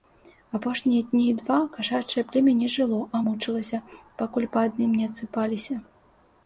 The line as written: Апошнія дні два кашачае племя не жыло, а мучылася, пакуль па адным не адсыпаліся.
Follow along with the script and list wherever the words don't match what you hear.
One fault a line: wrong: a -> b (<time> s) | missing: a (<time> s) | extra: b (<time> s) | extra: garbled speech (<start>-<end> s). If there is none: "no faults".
no faults